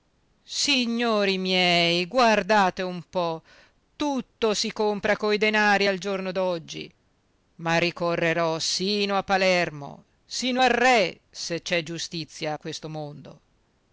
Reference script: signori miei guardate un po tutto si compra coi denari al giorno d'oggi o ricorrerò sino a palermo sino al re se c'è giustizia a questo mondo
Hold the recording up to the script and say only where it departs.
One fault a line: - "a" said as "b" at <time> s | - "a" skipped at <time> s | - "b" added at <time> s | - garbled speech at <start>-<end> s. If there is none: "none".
- "o" said as "ma" at 7.6 s